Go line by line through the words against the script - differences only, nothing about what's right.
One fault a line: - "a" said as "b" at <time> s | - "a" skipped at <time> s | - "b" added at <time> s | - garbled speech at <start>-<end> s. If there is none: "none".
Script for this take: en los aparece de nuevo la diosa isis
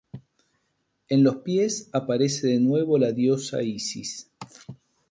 - "pies" added at 1.4 s